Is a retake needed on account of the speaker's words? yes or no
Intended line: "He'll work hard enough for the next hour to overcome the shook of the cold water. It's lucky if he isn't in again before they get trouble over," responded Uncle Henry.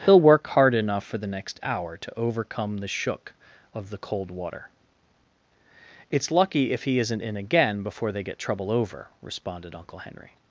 no